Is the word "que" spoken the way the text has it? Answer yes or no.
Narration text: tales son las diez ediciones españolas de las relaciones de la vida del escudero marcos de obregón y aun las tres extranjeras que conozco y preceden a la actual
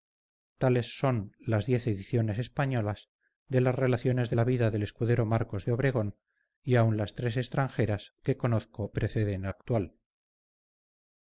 yes